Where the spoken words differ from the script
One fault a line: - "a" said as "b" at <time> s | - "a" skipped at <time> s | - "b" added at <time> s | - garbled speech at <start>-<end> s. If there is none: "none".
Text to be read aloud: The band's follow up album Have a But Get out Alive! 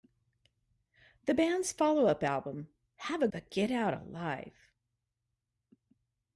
none